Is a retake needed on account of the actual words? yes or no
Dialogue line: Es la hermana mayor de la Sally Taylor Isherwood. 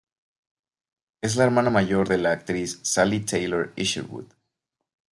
yes